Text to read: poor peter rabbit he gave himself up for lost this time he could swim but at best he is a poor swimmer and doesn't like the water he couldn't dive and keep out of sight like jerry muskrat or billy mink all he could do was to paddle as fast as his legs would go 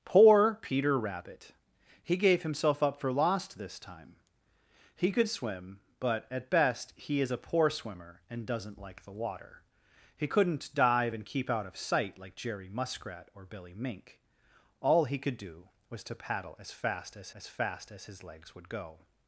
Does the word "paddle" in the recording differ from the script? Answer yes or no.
no